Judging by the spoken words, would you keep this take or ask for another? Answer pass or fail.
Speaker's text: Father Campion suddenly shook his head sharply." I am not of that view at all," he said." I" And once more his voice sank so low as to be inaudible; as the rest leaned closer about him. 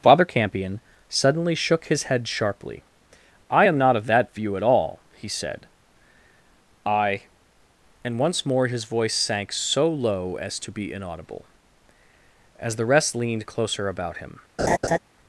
pass